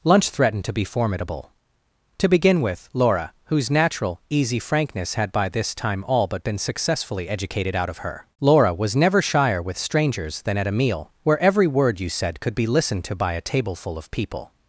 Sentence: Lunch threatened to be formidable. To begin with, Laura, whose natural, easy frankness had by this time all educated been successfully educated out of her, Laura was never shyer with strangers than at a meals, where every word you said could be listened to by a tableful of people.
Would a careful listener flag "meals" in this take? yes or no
yes